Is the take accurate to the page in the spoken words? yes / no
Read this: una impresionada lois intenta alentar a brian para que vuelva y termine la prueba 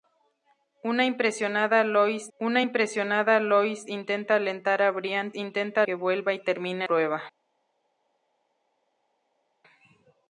no